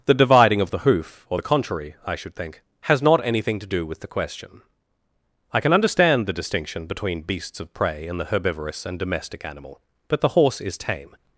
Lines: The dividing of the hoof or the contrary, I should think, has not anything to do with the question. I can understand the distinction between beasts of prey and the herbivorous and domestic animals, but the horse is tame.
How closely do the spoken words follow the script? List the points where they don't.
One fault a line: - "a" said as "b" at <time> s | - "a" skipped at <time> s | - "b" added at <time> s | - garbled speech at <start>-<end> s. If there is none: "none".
- "animals" said as "animal" at 9.4 s